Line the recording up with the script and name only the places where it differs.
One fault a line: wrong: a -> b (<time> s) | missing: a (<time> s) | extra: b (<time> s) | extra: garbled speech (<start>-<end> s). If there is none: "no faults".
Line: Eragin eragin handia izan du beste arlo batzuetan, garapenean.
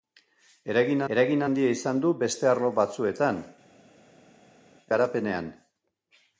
no faults